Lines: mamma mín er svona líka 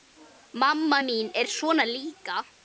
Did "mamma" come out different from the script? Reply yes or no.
no